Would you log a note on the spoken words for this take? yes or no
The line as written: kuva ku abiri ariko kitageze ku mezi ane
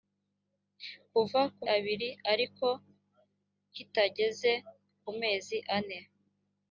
no